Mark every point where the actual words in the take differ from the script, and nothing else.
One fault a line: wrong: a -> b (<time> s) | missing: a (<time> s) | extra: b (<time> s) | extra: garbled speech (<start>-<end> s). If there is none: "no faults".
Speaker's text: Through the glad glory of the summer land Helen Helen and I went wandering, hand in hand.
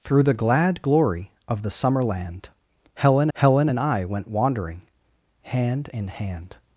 no faults